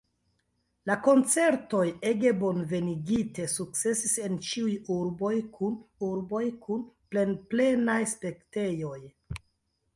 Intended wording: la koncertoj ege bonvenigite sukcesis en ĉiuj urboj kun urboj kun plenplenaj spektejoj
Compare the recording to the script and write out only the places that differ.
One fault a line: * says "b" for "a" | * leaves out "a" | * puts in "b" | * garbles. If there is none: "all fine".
all fine